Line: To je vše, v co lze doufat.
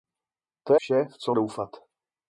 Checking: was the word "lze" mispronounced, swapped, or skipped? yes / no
yes